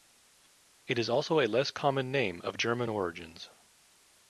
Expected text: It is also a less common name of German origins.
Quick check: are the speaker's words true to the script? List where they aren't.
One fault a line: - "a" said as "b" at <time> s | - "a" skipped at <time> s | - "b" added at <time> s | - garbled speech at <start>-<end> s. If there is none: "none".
none